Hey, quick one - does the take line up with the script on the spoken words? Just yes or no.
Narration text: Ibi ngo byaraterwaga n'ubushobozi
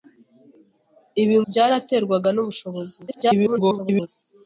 no